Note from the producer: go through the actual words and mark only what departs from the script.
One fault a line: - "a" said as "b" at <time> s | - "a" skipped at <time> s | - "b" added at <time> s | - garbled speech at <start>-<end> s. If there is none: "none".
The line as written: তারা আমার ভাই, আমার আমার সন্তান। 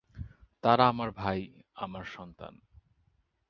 - "আমার" skipped at 2.0 s